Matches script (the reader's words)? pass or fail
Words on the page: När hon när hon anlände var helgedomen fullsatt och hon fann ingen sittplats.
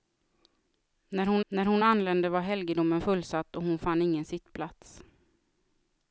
pass